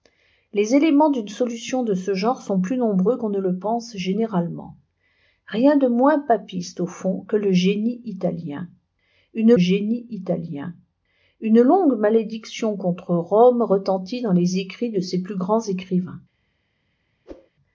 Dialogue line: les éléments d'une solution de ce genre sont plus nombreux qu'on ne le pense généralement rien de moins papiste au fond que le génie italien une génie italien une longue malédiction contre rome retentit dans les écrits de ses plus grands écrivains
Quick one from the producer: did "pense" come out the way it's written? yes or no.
yes